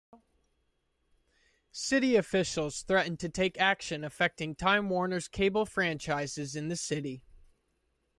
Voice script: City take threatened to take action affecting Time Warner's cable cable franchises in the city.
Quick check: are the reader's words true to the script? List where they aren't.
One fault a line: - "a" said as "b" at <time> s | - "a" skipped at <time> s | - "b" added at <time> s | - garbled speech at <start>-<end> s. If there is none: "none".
- "take" said as "officials" at 2.1 s
- "cable" skipped at 5.7 s